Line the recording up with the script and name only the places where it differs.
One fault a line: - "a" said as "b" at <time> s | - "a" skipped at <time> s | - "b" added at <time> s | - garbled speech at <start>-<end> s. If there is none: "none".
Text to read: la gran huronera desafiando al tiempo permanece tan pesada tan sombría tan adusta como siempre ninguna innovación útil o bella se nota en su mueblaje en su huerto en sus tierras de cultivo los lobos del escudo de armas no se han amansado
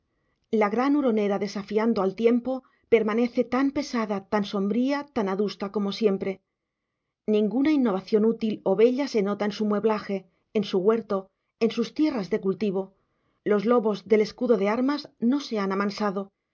none